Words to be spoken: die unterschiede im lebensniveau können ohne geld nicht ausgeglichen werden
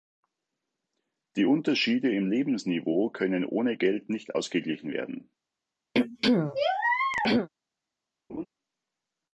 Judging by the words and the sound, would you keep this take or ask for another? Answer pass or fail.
fail